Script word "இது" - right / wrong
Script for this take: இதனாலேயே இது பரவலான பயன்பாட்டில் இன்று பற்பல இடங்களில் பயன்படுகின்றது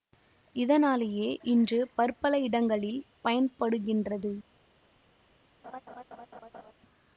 wrong